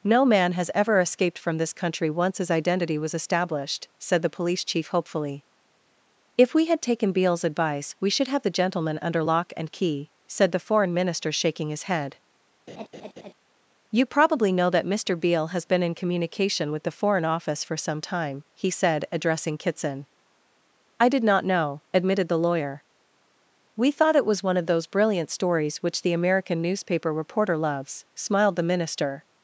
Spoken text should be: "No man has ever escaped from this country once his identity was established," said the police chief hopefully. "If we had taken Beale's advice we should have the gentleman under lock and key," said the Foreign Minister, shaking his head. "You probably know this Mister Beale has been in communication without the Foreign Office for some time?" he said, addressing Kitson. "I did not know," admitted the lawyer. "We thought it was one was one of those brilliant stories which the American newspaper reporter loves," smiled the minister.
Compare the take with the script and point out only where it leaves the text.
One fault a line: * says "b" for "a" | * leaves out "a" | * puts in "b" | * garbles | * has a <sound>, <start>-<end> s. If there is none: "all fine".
* has a laugh, 12.7-13.3 s
* says "that" for "this"
* says "with" for "without"
* leaves out "was one"